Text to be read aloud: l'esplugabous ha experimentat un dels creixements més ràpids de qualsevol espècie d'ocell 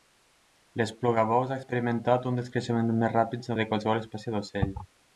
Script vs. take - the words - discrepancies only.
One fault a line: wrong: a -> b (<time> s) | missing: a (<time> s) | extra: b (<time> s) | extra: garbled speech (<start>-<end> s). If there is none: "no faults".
no faults